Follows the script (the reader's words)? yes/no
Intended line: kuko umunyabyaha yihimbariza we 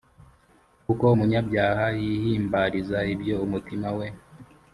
no